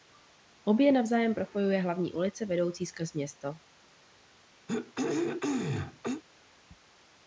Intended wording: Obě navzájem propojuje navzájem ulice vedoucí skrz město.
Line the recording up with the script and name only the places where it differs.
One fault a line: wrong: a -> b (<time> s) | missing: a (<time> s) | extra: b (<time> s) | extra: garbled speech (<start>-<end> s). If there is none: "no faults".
wrong: navzájem -> hlavní (1.8 s)